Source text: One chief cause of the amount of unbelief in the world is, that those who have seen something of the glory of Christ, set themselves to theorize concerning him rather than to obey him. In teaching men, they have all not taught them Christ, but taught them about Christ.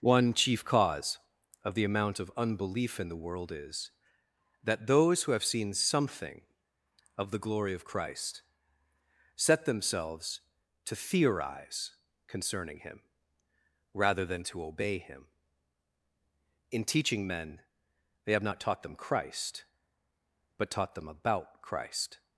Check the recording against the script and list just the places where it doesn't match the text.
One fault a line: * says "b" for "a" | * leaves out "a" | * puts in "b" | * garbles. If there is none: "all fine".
* leaves out "all"